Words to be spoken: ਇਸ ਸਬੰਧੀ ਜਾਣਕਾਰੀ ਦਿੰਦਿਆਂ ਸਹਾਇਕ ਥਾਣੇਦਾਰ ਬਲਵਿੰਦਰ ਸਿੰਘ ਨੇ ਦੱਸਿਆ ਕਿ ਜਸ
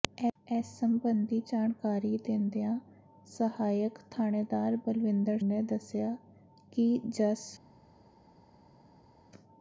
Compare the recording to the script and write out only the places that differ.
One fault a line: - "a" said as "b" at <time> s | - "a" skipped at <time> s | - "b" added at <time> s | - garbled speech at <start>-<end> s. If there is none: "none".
- "ਸਿੰਘ" skipped at 5.4 s